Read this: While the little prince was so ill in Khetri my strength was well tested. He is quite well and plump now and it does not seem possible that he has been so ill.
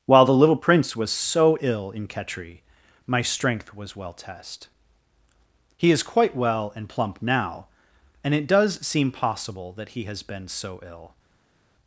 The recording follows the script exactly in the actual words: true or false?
false